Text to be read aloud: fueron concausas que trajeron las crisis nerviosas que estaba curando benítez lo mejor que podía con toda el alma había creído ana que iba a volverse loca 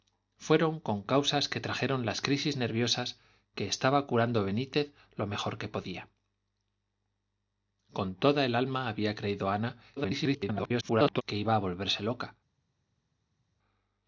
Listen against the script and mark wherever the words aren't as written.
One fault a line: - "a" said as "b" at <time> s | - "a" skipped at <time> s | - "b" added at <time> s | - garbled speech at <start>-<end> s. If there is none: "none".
- garbled speech at 10.0-11.2 s